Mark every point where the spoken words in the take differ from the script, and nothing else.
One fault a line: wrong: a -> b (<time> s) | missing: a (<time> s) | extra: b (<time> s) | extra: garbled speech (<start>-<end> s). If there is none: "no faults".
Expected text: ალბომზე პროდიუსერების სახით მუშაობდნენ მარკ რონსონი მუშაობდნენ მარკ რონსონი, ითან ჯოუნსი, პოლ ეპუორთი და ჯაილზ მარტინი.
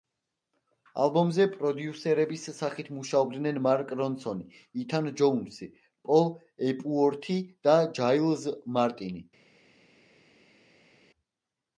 missing: მუშაობდნენ მარკ რონსონი (4.5 s)